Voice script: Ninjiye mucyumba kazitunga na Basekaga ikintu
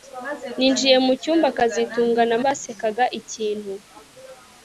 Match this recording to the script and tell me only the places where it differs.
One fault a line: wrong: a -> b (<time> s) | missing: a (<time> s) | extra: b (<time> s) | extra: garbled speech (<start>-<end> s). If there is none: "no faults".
no faults